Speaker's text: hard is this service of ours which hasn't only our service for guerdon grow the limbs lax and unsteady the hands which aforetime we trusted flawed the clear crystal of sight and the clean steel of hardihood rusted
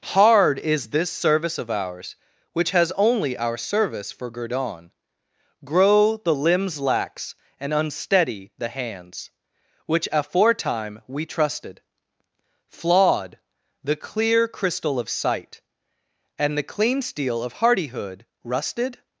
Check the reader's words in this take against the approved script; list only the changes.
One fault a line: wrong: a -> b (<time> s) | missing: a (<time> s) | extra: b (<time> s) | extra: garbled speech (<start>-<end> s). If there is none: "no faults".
wrong: hasn't -> has (2.7 s)